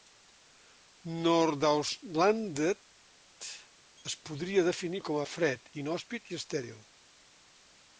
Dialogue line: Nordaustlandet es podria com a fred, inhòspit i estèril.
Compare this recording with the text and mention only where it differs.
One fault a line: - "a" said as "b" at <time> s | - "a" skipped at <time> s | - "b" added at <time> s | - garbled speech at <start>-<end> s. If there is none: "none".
- "definir" added at 4.7 s